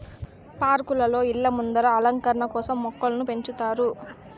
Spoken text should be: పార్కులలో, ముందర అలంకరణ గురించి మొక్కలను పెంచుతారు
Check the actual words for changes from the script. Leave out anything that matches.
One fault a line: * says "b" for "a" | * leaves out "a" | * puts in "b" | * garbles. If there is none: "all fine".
* puts in "ఇళ్ళ"
* says "కోసం" for "గురించి"